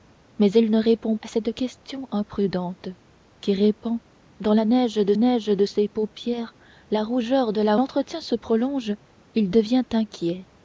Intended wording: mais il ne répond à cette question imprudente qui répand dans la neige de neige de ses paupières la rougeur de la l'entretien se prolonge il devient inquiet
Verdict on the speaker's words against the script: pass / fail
pass